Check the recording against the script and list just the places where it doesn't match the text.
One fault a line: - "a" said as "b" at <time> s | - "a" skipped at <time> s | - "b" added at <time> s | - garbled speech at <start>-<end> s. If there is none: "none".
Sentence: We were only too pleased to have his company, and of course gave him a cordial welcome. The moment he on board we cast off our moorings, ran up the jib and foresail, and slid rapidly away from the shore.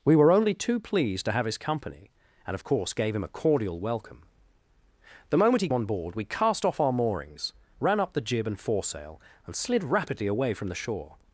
none